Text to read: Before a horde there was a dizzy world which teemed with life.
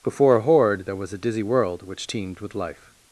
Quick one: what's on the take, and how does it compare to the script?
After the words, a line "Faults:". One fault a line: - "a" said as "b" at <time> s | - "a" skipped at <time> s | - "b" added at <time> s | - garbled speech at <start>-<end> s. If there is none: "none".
Before a horde there was a dizzy world which teemed with life.
Faults:
none